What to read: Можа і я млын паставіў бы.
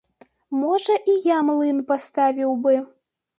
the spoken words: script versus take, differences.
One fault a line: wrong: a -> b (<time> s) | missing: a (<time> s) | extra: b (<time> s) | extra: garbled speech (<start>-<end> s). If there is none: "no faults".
no faults